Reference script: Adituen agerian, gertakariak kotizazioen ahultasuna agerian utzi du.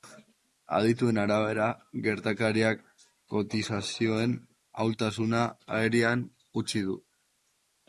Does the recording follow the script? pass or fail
fail